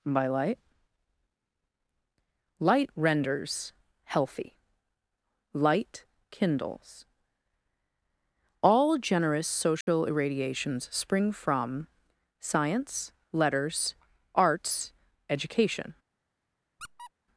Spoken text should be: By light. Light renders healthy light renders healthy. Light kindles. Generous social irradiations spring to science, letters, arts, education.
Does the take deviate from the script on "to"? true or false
true